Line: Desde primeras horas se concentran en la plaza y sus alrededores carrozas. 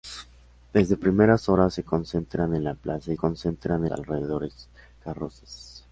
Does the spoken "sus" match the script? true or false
false